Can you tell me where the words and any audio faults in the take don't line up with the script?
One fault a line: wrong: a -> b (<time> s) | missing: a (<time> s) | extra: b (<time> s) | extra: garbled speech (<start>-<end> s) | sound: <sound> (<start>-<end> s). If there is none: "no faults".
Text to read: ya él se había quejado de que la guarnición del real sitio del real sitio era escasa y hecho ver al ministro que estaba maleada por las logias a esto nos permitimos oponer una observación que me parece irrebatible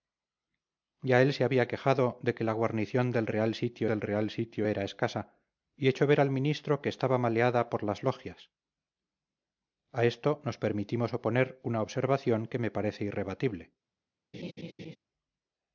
sound: laugh (14.3-15.0 s)